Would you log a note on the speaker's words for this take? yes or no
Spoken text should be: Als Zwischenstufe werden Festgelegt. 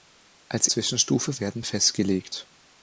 no